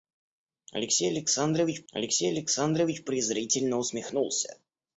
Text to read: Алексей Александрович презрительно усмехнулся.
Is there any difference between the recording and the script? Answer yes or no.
yes